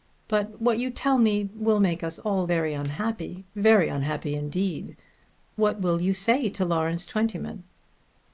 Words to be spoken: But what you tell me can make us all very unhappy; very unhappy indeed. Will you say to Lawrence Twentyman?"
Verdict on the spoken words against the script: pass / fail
fail